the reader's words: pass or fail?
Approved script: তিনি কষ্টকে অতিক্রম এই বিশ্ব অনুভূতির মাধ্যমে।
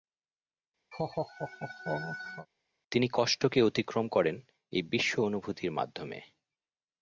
fail